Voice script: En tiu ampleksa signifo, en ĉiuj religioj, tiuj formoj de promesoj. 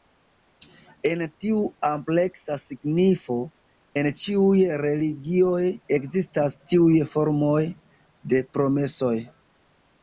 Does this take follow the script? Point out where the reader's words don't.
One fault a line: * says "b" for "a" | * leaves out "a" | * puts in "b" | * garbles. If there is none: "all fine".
* puts in "ekzistas"